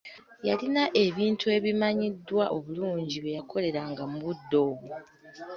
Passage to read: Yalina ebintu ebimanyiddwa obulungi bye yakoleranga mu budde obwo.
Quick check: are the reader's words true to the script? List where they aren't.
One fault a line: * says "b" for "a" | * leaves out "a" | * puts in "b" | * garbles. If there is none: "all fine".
all fine